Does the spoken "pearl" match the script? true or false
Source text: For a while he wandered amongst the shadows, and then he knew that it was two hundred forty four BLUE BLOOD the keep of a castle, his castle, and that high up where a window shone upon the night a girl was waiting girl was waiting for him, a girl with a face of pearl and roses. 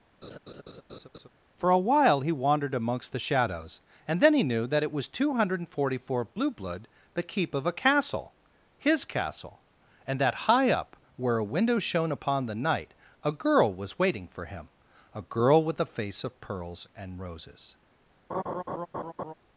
false